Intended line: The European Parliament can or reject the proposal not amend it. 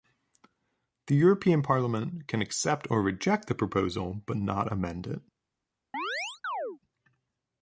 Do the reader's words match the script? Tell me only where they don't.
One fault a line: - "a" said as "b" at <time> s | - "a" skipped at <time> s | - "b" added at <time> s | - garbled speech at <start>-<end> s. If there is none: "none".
- "accept" added at 2.4 s
- "but" added at 4.3 s